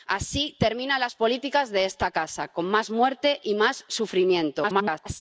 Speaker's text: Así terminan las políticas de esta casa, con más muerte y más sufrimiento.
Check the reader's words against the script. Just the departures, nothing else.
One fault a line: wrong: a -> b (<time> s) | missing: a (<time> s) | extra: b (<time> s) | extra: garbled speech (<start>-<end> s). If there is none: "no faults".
extra: garbled speech (4.6-5.2 s)